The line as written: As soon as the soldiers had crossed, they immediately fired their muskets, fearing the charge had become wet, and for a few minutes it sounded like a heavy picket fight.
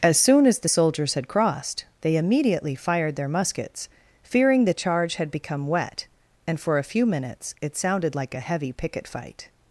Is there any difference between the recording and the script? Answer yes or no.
no